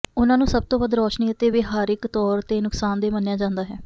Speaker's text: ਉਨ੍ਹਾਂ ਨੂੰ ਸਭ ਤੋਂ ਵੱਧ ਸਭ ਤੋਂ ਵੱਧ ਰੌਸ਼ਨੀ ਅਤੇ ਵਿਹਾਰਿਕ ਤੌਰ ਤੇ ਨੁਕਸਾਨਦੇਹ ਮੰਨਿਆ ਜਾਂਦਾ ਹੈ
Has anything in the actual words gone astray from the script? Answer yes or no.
yes